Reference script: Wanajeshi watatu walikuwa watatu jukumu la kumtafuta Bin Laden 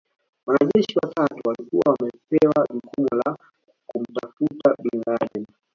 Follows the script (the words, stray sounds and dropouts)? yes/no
no